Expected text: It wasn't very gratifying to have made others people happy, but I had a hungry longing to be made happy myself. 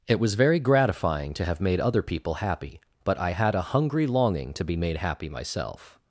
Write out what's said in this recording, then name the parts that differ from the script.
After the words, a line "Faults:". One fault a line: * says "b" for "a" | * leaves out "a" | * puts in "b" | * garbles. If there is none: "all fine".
It was very gratifying to have made other people happy, but I had a hungry longing to be made happy myself.
Faults:
* says "was" for "wasn't"
* says "other" for "others"